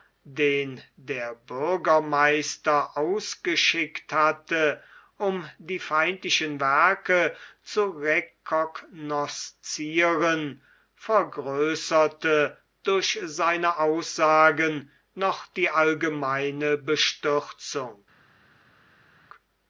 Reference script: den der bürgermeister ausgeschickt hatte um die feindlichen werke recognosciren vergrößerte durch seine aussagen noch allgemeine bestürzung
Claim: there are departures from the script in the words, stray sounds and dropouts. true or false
true